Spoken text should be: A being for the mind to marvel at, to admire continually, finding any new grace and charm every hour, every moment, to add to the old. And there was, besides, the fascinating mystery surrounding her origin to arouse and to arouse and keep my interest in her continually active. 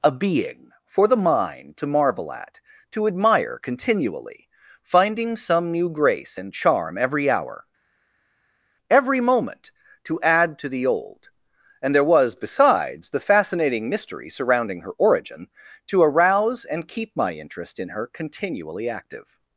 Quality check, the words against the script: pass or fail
fail